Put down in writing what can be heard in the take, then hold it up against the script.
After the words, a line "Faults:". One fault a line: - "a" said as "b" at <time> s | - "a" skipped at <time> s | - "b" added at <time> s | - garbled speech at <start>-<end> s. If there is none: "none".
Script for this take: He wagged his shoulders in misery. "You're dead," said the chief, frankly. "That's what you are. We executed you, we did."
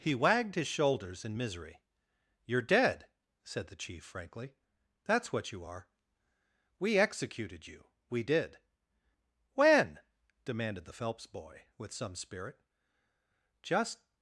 He wagged his shoulders in misery. "You're dead," said the chief, frankly. "That's what you are. We executed you, we did." "When?" demanded the Phelps boy, with some spirit. "Just
Faults:
- "When demanded the Phelps boy with some spirit Just" added at 9.5 s